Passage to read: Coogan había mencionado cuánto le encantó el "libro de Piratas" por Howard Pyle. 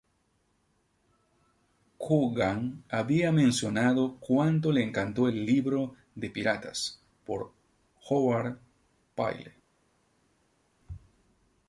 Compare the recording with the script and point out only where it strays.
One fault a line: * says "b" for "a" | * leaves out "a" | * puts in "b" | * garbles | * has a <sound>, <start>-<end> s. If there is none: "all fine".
all fine